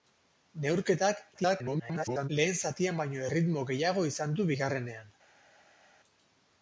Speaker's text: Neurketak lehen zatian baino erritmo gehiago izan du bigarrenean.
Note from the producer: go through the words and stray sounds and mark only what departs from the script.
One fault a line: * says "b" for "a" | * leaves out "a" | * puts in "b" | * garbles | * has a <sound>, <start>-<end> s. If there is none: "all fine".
* garbles